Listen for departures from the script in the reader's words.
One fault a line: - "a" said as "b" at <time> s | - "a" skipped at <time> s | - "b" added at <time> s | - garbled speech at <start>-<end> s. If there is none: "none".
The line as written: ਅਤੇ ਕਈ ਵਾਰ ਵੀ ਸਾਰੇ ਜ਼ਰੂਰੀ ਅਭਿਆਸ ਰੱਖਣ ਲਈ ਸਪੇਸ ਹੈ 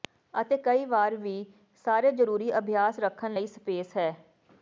none